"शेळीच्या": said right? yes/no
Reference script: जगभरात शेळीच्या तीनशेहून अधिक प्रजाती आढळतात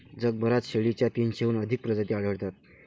yes